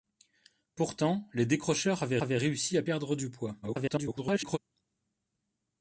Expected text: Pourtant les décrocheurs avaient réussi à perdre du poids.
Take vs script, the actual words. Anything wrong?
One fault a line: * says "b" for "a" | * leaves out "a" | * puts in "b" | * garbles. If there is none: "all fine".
* puts in "avaient"
* garbles